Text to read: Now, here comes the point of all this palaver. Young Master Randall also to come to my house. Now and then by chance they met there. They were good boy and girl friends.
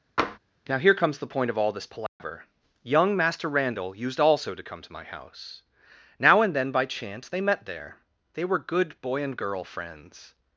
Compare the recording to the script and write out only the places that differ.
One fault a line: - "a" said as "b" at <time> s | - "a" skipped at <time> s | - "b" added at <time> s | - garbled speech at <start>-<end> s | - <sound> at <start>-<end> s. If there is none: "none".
- tap at 0.2-0.4 s
- dropout at 2.1-2.2 s
- "used" added at 4.0 s